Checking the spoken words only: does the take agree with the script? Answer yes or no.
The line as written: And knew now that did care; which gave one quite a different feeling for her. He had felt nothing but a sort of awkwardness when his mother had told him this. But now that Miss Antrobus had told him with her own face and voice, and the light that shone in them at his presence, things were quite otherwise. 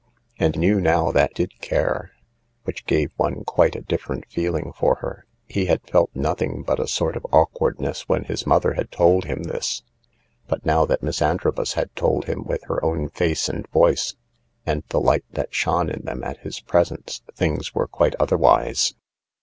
yes